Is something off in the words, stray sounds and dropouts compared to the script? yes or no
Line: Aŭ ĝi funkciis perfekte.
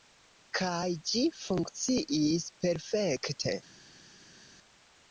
yes